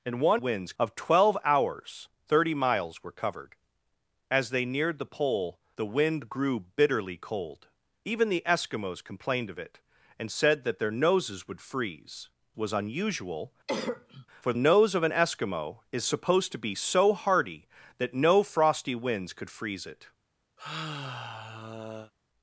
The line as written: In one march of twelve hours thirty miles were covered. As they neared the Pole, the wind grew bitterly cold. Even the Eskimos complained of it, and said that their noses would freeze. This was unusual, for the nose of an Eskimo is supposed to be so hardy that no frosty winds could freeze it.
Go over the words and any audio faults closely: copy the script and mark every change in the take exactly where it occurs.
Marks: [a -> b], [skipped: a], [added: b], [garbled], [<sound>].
In one [march -> winds] of twelve hours thirty miles were covered. As they neared the Pole, the wind grew bitterly cold. Even the Eskimos complained of it, and said that their noses would freeze. [skipped: This] was unusual, [cough] for [skipped: the] nose of an Eskimo is supposed to be so hardy that no frosty winds could freeze it. [sigh]